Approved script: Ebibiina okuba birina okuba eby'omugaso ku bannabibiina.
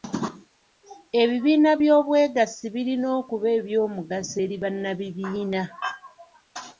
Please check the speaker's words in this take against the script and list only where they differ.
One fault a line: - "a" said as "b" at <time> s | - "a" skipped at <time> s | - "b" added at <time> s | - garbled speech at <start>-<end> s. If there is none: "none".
- "okuba" said as "by'obwegassi" at 1.8 s
- "ku" said as "eri" at 4.4 s